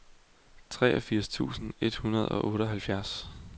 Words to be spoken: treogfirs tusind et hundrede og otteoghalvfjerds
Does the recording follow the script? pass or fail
pass